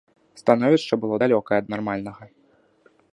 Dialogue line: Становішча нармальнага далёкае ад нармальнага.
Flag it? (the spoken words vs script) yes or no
yes